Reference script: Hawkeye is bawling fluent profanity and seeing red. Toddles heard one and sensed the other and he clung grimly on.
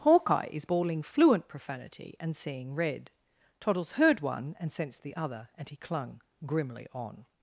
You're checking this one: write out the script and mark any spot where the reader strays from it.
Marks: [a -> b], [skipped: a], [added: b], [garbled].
Hawkeye is bawling fluent profanity and seeing red. Toddles heard one and sensed the other and he clung grimly on.